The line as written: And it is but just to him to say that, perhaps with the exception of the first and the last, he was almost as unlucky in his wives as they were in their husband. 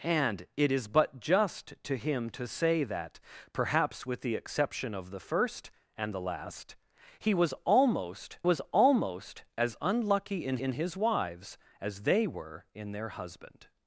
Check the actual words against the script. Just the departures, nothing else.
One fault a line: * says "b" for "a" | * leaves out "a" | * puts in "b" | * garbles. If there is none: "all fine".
* puts in "was almost"
* puts in "in"